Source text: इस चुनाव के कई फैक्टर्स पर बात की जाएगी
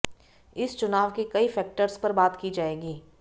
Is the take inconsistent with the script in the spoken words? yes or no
no